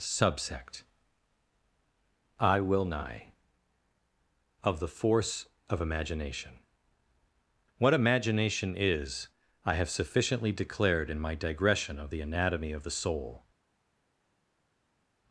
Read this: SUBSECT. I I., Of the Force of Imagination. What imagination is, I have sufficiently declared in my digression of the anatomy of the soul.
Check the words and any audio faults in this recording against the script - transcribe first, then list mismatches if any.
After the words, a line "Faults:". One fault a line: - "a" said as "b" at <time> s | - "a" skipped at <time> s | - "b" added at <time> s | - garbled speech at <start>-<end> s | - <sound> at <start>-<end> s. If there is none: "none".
SUBSECT. I will nigh., Of the Force of Imagination. What imagination is, I have sufficiently declared in my digression of the anatomy of the soul.
Faults:
- "I" said as "will nigh" at 2.6 s